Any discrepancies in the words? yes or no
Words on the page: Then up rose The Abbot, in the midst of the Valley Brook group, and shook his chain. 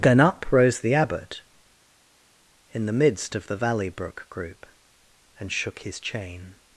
no